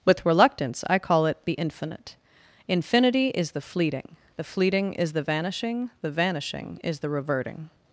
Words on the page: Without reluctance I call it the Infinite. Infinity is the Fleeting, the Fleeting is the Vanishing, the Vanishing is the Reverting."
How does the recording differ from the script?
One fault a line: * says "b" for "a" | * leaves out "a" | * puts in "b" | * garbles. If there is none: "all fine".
* says "With" for "Without"